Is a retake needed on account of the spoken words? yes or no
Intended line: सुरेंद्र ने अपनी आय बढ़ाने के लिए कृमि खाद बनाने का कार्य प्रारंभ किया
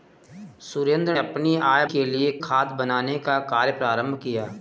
yes